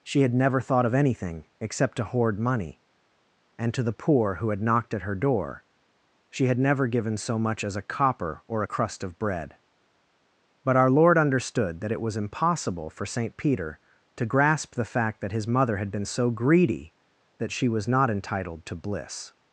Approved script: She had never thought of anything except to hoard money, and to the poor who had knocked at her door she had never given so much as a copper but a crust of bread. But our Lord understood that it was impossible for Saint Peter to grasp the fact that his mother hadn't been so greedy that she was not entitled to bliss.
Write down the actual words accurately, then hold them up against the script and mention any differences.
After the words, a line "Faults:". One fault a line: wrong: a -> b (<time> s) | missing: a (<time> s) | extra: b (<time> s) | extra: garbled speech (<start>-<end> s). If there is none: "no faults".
She had never thought of anything except to hoard money, and to the poor who had knocked at her door she had never given so much as a copper or a crust of bread. But our Lord understood that it was impossible for Saint Peter to grasp the fact that his mother had been so greedy that she was not entitled to bliss.
Faults:
wrong: but -> or (8.5 s)
wrong: hadn't -> had (15.8 s)